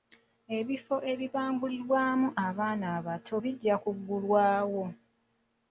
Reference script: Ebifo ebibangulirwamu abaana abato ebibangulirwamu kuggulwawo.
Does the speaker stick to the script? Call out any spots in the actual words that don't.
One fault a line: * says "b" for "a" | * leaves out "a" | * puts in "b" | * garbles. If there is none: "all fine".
* says "bijja" for "ebibangulirwamu"